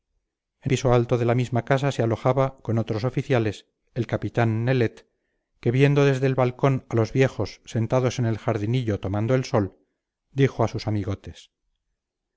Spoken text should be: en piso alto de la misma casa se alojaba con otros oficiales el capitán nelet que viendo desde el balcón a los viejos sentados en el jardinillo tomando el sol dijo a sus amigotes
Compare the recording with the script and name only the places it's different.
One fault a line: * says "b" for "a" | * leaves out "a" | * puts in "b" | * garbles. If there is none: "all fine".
all fine